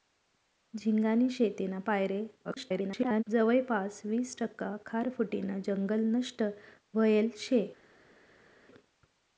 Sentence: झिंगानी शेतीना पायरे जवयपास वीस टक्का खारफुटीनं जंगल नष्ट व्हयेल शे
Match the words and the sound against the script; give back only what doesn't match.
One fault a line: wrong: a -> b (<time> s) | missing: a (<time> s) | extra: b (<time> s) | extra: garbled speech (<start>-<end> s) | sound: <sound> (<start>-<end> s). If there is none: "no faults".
extra: garbled speech (2.4-3.2 s)